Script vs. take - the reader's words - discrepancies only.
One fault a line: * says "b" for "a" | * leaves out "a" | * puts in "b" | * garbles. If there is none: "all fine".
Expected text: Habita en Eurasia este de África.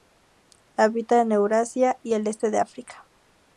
* puts in "y el"